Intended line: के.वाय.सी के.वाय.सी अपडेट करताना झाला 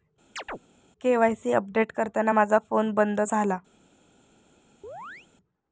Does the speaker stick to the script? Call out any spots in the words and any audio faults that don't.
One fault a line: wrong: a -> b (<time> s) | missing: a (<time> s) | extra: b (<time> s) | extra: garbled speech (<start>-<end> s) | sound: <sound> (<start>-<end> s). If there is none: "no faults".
sound: chirp (0.4-0.6 s)
missing: के.वाय.सी (1.5 s)
extra: माझा फोन बंद (2.3 s)
sound: chirp (4.8-5.3 s)